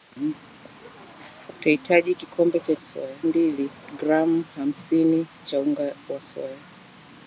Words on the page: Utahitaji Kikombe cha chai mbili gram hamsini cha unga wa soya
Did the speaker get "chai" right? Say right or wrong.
wrong